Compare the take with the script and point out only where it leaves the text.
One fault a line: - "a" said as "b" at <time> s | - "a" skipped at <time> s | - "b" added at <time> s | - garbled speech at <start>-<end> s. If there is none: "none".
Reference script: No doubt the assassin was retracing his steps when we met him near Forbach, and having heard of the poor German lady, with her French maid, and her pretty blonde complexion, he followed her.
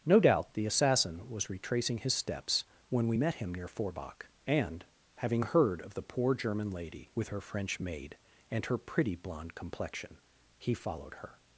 none